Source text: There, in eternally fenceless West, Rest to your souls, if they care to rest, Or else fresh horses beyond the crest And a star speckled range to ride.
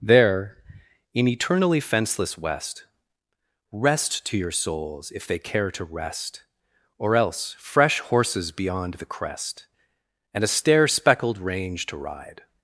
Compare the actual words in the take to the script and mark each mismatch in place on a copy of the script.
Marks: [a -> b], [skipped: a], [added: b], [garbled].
There, in eternally fenceless West, Rest to your souls, if they care to rest, Or else fresh horses beyond the crest And a [star -> stair] speckled range to ride.